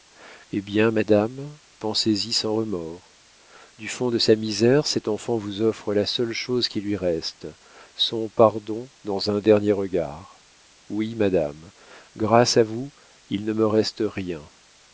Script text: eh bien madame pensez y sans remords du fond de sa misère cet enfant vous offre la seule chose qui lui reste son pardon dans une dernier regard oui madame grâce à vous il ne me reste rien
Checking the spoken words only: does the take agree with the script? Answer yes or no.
no